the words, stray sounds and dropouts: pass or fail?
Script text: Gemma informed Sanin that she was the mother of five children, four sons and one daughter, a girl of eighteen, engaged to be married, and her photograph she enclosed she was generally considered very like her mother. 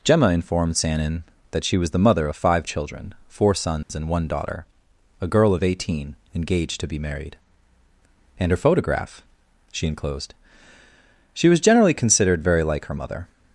fail